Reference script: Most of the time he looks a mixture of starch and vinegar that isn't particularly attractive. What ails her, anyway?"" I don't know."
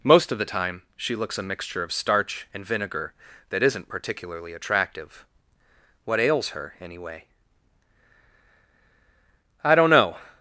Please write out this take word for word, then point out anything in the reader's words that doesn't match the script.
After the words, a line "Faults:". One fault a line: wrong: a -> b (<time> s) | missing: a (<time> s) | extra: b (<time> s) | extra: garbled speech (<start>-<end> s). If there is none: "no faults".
Most of the time she looks a mixture of starch and vinegar that isn't particularly attractive. What ails her, anyway?"" I don't know."
Faults:
wrong: he -> she (0.9 s)